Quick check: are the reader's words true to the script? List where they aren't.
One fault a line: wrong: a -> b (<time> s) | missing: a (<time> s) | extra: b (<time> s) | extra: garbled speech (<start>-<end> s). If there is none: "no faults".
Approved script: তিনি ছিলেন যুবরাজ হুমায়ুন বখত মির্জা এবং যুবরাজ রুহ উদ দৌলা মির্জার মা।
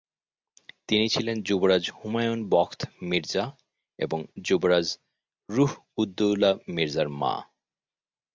no faults